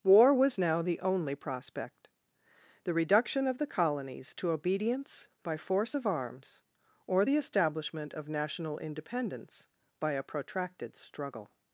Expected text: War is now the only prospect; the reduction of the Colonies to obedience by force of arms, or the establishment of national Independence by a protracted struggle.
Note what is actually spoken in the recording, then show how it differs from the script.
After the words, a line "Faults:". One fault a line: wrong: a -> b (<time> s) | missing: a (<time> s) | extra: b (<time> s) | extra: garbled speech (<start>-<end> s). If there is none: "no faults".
War was now the only prospect; the reduction of the Colonies to obedience by force of arms, or the establishment of national Independence by a protracted struggle.
Faults:
wrong: is -> was (0.3 s)